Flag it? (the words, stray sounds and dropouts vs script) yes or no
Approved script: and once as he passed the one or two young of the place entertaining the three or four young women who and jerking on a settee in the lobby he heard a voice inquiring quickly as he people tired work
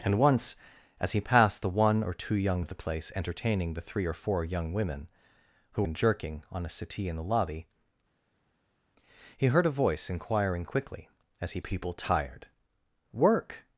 no